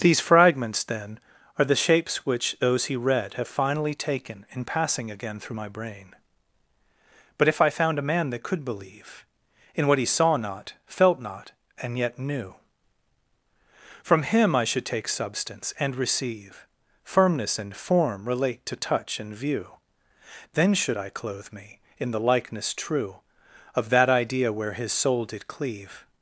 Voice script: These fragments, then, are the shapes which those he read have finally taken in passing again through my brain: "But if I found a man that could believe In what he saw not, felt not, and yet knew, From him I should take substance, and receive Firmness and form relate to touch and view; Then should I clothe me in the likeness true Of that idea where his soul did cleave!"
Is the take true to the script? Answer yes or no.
yes